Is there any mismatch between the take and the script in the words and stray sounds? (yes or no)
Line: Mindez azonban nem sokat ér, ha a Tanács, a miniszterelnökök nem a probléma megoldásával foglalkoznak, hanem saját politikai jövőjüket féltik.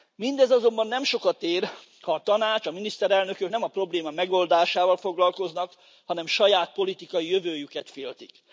no